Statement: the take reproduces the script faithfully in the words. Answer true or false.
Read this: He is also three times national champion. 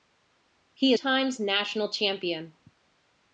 false